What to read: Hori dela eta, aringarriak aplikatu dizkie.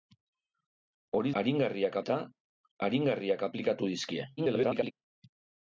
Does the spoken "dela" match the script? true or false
false